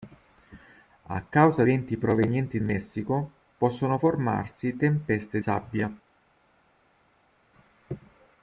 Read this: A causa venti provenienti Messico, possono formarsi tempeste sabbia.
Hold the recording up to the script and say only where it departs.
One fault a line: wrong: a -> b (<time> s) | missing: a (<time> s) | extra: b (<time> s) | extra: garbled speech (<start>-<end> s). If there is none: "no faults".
no faults